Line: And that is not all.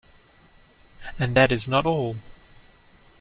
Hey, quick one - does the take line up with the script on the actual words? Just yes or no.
yes